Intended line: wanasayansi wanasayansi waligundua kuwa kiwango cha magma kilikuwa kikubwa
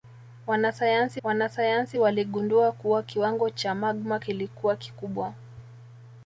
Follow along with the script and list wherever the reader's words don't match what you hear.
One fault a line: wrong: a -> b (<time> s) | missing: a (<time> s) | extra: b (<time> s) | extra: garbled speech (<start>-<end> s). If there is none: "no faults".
no faults